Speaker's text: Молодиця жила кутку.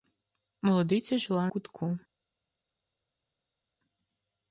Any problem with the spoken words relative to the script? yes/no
no